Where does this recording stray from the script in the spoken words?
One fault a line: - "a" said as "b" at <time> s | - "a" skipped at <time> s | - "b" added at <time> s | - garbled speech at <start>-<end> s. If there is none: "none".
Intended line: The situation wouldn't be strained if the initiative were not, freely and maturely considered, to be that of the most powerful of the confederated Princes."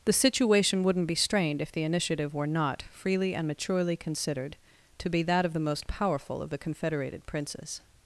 none